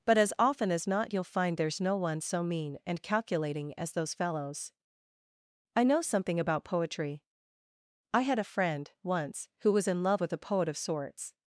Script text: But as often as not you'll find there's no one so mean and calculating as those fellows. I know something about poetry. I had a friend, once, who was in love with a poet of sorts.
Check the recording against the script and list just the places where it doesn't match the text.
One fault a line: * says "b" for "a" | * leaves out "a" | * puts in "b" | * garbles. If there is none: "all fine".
all fine